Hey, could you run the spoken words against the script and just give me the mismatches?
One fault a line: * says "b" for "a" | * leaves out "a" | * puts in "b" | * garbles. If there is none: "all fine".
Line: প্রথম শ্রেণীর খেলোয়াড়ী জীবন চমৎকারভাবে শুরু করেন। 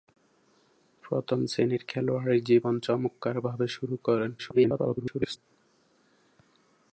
* garbles